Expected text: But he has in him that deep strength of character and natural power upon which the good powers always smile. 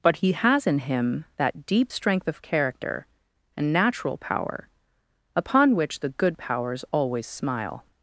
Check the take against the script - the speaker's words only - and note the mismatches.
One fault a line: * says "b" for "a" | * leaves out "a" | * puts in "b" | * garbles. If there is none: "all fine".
all fine